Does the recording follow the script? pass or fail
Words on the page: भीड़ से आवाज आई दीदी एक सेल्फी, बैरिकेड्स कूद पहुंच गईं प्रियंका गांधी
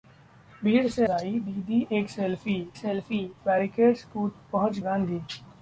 fail